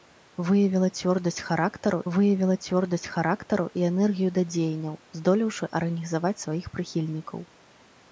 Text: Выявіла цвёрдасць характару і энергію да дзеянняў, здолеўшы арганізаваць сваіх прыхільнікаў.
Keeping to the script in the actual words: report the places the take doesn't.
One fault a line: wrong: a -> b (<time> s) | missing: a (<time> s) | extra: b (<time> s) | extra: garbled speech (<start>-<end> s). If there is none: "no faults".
extra: выявіла цвёрдасць характару (2.1 s)